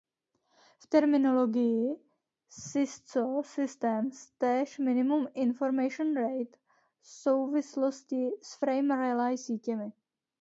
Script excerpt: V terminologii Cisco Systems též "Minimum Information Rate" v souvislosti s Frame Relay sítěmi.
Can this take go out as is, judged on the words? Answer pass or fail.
pass